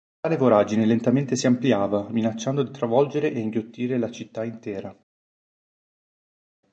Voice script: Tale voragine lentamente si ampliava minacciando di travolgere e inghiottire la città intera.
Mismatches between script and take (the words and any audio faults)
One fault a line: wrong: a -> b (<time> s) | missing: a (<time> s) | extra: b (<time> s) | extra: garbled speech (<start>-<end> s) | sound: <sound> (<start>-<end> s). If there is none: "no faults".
no faults